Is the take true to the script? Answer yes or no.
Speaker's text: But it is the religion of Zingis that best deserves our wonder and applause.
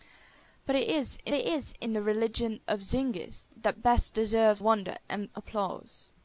no